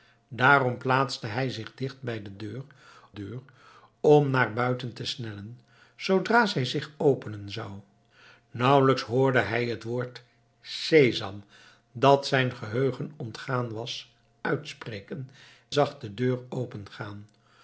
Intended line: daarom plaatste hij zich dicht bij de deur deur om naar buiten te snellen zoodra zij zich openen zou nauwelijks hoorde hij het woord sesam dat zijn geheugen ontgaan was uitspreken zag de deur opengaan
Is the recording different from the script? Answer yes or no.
no